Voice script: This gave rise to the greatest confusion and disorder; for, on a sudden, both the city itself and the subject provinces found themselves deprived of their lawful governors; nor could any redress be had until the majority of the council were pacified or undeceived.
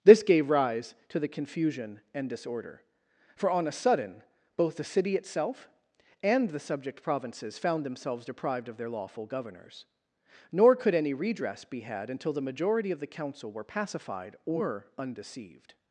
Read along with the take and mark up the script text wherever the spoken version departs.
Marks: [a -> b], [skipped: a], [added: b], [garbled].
This gave rise to the [skipped: greatest] confusion and disorder; for, on a sudden, both the city itself and the subject provinces found themselves deprived of their lawful governors; nor could any redress be had until the majority of the council were pacified or undeceived.